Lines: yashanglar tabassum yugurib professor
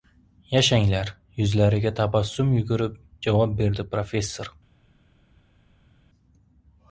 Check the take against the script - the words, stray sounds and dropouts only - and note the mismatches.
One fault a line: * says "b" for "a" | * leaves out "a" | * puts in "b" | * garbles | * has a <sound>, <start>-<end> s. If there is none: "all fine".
* puts in "yuzlariga"
* puts in "javob berdi"